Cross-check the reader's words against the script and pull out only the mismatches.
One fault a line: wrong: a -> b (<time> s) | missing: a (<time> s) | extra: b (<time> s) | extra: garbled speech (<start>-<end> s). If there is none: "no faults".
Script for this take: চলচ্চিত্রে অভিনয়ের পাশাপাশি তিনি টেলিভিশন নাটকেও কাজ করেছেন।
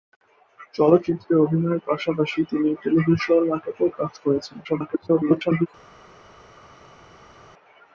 extra: garbled speech (4.6-5.7 s)